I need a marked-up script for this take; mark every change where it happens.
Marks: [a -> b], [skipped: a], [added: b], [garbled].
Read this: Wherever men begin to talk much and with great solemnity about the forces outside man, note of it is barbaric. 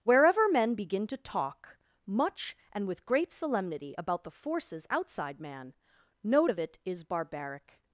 Wherever men begin to talk much and with great solemnity about the forces outside man, note of it is barbaric.